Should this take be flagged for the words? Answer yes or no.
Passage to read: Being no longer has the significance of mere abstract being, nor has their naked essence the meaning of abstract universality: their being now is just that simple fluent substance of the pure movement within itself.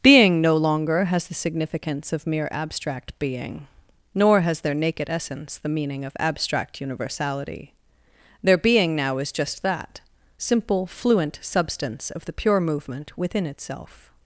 no